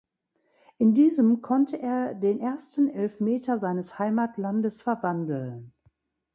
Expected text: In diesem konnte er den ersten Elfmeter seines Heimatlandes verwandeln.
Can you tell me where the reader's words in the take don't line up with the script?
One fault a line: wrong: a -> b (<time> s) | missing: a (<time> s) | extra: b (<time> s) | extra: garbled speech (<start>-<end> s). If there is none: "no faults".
no faults